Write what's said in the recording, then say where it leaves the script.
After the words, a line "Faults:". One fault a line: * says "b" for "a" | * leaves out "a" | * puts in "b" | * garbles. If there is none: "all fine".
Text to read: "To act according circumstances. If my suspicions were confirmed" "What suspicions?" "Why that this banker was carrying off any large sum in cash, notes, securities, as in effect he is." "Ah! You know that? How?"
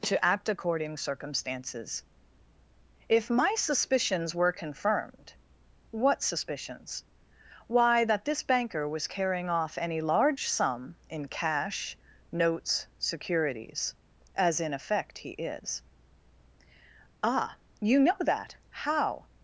"To act according circumstances. If my suspicions were confirmed" "What suspicions?" "Why that this banker was carrying off any large sum in cash, notes, securities, as in effect he is." "Ah! You know that? How?"
Faults:
all fine